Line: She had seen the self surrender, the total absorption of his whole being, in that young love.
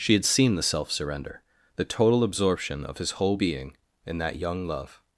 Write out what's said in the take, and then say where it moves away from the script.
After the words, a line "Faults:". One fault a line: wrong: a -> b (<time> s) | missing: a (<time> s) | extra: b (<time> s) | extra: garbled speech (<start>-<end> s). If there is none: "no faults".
She had seen the self surrender, the total absorption of his whole being, in that young love.
Faults:
no faults